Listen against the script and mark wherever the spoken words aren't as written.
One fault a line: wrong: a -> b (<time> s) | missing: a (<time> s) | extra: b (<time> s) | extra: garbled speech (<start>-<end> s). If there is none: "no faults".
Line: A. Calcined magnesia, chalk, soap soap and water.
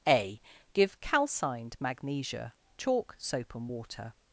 extra: Give (0.7 s)
missing: soap (3.5 s)